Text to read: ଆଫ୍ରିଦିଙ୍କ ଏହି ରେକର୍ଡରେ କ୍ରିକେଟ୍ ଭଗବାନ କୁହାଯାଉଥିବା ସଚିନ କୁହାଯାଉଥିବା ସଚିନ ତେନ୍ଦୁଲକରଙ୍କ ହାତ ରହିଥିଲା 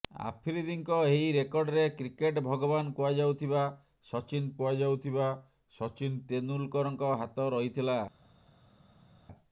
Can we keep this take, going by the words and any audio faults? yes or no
yes